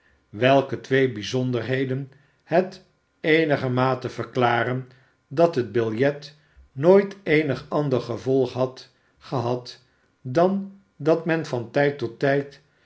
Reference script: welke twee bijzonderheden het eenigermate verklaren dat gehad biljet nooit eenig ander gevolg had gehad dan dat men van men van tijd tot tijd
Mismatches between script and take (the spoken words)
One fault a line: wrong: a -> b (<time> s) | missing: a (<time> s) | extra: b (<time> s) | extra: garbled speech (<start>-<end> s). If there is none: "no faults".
wrong: gehad -> het (5.5 s)
missing: men van (11.7 s)